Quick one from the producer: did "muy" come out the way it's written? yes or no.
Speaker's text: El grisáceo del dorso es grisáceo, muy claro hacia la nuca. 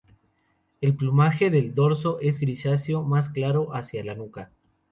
no